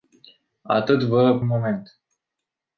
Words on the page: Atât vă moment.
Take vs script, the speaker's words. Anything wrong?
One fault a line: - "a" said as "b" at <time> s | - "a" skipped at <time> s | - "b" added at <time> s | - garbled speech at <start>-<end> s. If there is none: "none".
none